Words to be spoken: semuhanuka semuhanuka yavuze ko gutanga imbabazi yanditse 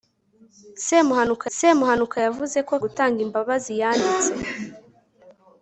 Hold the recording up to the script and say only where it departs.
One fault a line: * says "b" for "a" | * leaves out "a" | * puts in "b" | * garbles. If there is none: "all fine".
all fine